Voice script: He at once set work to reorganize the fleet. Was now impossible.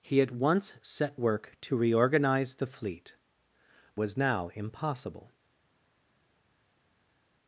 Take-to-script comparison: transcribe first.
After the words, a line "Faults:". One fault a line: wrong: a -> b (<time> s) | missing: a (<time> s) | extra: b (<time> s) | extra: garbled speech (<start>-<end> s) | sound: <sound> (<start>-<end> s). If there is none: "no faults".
He at once set work to reorganize the fleet. Was now impossible.
Faults:
no faults